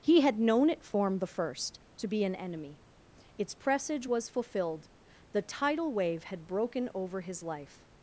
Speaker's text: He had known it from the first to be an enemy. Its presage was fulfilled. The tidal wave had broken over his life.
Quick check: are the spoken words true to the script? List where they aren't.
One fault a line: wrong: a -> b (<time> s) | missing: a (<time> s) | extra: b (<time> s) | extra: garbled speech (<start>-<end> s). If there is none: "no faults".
wrong: from -> form (0.8 s)